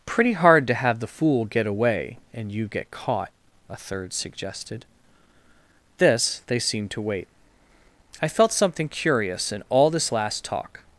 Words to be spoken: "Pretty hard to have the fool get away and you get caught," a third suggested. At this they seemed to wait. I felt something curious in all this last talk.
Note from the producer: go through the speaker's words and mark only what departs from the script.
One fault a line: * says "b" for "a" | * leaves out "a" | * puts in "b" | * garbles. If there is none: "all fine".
* leaves out "At"